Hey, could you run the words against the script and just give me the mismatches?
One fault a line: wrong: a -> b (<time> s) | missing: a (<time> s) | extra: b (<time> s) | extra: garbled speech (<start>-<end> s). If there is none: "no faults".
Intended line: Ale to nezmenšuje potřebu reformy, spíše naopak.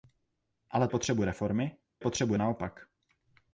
missing: to nezmenšuje (0.9 s)
wrong: spíše -> potřebu (2.0 s)